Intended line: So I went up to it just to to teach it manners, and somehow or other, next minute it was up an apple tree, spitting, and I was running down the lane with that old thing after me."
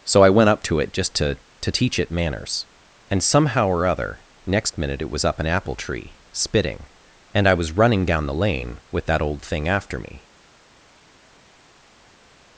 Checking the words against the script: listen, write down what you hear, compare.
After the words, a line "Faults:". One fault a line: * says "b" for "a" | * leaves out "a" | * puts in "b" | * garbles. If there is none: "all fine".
So I went up to it just to to teach it manners, and somehow or other, next minute it was up an apple tree, spitting, and I was running down the lane with that old thing after me."
Faults:
all fine